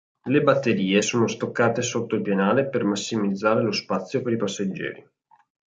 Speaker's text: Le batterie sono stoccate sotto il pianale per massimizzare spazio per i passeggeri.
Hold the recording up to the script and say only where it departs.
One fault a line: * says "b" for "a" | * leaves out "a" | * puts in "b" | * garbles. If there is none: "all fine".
* puts in "lo"